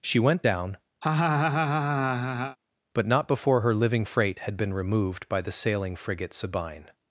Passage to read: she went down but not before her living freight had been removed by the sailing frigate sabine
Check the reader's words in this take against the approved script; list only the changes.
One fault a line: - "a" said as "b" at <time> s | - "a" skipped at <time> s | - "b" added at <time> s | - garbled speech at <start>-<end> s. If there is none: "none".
none